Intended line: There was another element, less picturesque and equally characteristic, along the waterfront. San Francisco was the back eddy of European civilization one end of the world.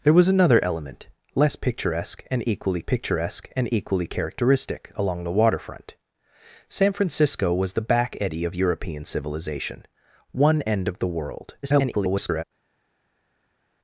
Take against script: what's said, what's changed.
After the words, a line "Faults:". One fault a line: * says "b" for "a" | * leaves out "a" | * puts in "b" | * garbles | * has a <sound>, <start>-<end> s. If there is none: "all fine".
There was another element, less picturesque and equally picturesque and equally characteristic, along the waterfront. San Francisco was the back eddy of European civilization one end of the world. [garbled]
Faults:
* puts in "picturesque and equally"
* garbles